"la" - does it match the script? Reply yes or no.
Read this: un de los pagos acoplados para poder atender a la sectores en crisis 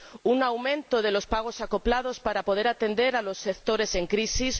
no